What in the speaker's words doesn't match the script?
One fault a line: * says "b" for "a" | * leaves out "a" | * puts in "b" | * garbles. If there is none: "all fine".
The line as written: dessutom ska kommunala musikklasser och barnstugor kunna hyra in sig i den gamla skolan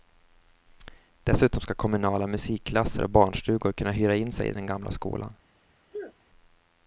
all fine